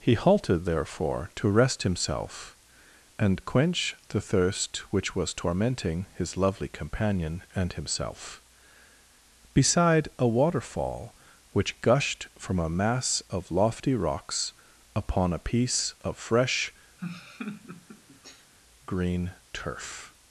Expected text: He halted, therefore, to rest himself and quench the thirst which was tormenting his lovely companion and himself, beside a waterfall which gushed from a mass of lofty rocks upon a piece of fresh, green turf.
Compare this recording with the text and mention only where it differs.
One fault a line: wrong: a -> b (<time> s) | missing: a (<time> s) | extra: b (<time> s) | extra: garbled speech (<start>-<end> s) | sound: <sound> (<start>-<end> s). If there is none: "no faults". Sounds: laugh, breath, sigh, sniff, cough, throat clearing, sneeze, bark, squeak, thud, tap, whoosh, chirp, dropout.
sound: laugh (17.0-18.5 s)